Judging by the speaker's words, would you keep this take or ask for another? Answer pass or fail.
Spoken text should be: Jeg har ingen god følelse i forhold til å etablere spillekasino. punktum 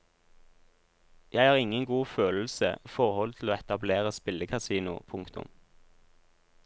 fail